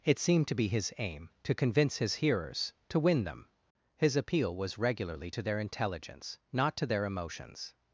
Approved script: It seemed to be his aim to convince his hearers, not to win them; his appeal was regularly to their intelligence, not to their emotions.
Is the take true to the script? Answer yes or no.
no